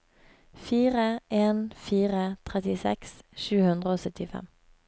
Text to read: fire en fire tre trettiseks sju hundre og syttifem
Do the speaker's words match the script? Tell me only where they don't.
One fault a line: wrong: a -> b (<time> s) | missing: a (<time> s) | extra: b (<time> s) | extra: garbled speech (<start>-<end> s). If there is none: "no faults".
missing: tre (2.2 s)